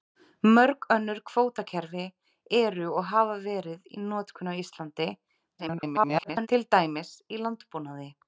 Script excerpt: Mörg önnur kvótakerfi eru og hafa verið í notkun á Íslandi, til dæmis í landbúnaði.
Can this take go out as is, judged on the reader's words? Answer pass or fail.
fail